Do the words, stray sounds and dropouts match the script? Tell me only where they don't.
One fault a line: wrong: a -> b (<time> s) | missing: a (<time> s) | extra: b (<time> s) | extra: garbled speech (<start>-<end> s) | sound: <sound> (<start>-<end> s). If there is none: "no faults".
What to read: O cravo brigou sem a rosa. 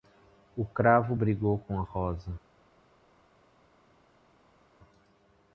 wrong: sem -> com (1.6 s)